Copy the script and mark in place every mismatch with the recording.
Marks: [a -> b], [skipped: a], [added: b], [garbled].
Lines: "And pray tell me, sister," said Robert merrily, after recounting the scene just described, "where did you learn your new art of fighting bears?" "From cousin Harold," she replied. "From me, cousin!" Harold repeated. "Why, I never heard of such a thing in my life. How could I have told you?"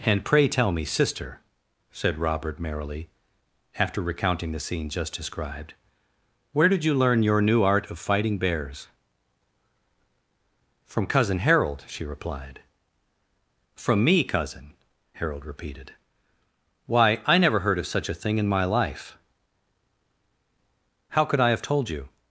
"And pray tell me, sister," said Robert merrily, after recounting the scene just described, "where did you learn your new art of fighting bears?" "From cousin Harold," she replied. "From me, cousin!" Harold repeated. "Why, I never heard of such a thing in my life. How could I have told you?"